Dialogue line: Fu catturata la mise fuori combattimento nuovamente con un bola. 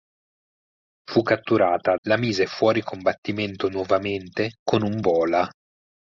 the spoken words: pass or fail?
pass